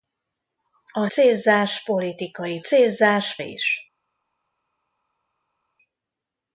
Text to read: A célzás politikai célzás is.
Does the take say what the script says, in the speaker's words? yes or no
yes